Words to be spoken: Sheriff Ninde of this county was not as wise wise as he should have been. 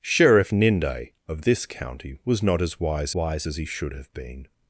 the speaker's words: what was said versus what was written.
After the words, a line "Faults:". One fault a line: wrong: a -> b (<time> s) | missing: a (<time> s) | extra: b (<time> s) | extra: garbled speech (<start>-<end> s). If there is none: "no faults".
Sheriff Ninde of this county was not as wise wise as he should have been.
Faults:
no faults